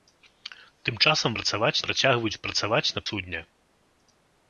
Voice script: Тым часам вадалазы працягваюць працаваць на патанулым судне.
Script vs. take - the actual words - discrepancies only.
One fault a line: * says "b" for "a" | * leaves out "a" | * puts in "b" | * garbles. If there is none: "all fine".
* says "працаваць" for "вадалазы"
* leaves out "патанулым"